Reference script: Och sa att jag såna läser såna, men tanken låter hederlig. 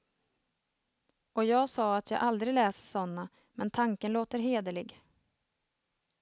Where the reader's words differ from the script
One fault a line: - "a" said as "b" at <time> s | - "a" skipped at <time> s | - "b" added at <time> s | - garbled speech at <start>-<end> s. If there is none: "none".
- "jag" added at 1.4 s
- "såna" said as "aldrig" at 2.2 s